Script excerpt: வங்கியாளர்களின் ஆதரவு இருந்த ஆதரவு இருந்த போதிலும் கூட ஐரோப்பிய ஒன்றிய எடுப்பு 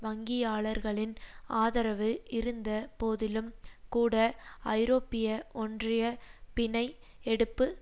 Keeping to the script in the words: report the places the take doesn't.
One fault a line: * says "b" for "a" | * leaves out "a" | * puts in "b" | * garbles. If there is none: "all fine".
* leaves out "ஆதரவு இருந்த"
* puts in "பிணை"